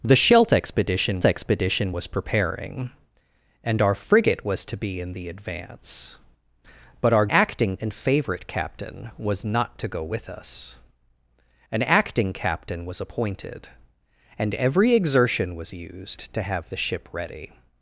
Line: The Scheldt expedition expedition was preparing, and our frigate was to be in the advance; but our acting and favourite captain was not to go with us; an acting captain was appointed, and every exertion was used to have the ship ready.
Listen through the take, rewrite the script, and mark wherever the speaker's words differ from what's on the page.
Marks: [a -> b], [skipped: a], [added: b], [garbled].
The Scheldt expedition expedition was preparing, and our frigate was to be in the advance; but our acting and favourite captain was not to go with us; an acting captain was appointed, and every exertion was used to have the ship ready.